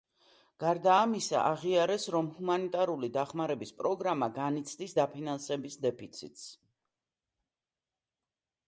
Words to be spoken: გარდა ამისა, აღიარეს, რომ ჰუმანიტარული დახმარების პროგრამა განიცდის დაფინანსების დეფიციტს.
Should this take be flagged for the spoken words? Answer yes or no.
no